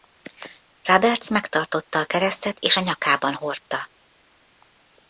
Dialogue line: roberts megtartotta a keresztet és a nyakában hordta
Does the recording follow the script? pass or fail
pass